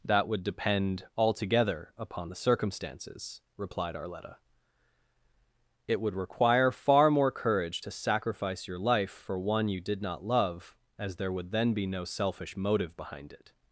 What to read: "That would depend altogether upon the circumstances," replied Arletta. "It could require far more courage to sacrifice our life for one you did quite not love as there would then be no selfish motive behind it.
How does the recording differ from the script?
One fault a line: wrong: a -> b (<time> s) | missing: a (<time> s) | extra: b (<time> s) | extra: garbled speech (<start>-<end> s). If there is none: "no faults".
wrong: could -> would (6.0 s)
wrong: our -> your (8.7 s)
missing: quite (10.0 s)